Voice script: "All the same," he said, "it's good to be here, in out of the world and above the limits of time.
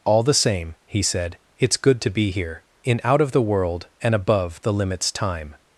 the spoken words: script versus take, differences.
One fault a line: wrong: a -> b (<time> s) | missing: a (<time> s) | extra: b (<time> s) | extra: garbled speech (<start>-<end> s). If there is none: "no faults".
missing: of (5.1 s)